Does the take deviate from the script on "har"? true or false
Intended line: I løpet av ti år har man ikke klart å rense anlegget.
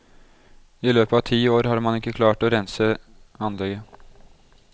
false